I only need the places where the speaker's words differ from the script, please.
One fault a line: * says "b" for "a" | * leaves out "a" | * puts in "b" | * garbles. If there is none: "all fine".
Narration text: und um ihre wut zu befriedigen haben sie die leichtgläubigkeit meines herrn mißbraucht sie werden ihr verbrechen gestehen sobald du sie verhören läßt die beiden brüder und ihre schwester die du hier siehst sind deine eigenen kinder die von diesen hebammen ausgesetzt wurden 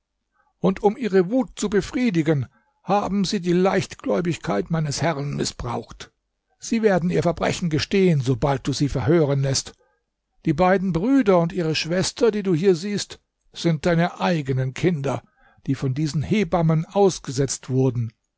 all fine